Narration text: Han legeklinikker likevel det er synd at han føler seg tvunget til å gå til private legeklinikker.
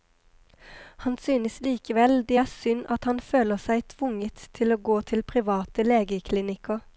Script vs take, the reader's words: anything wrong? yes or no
yes